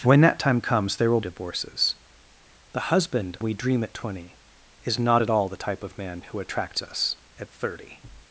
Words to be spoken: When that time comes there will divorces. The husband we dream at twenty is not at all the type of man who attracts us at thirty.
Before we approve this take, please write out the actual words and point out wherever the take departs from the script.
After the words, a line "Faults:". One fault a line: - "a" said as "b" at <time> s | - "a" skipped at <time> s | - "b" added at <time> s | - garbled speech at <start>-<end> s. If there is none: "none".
When that time comes there will divorces. The husband we dream at twenty is not at all the type of man who attracts us at thirty.
Faults:
none